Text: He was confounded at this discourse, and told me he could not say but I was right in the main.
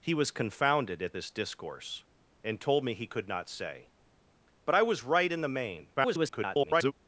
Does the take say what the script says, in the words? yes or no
no